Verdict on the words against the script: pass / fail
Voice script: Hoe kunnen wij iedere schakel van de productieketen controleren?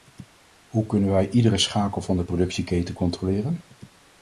pass